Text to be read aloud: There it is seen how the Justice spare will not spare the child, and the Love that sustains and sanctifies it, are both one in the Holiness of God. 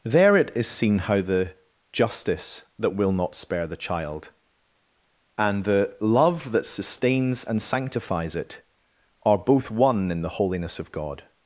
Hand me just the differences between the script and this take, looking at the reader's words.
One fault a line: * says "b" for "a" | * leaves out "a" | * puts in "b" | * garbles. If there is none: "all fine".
* says "that" for "spare"